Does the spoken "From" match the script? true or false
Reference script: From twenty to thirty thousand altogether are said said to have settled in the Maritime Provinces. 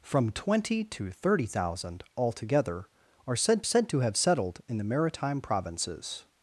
true